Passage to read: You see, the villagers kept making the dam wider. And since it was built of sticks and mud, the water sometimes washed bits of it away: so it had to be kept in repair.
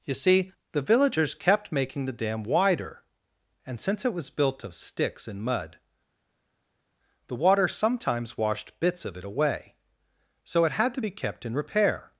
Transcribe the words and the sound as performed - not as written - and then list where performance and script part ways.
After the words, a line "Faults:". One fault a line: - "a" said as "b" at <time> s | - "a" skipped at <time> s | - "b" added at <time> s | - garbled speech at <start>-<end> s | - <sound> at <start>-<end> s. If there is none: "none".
You see, the villagers kept making the dam wider. And since it was built of sticks and mud, the water sometimes washed bits of it away: so it had to be kept in repair.
Faults:
none